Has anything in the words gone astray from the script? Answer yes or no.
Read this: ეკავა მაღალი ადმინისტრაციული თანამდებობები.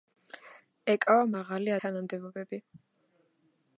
yes